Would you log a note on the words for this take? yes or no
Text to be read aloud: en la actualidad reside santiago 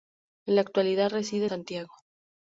no